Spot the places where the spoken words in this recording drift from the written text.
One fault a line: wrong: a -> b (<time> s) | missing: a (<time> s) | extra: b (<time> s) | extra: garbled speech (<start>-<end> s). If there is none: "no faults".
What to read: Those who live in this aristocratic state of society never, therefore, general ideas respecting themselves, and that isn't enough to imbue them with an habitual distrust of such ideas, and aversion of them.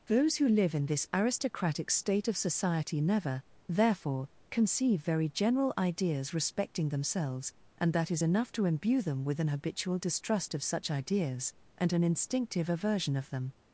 extra: conceive very (4.5 s)
wrong: isn't -> is (8.1 s)
extra: an instinctive (11.9 s)